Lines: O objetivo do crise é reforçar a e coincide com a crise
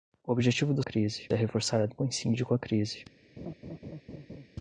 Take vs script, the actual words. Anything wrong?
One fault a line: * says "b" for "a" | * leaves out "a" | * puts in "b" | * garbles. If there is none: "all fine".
all fine